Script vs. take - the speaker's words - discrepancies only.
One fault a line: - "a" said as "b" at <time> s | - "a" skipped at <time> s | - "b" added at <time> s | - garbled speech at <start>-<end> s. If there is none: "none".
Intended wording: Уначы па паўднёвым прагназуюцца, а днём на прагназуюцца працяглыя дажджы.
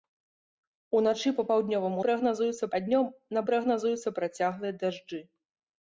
none